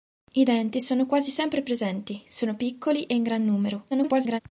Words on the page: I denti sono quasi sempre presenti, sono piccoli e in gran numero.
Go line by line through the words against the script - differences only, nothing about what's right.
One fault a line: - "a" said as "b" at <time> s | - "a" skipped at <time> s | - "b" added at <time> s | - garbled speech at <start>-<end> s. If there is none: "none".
- garbled speech at 3.9-4.4 s